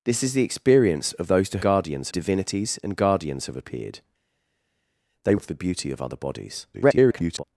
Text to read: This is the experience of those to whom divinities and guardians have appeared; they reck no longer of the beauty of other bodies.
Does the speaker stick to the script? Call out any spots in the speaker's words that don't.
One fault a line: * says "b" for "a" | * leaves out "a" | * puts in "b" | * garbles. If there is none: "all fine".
* says "guardians" for "whom"
* leaves out "reck no longer"
* garbles